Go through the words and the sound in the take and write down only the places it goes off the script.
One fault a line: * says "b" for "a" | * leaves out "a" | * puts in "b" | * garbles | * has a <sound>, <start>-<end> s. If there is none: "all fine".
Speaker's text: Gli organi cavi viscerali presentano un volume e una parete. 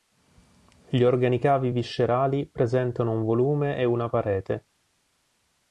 all fine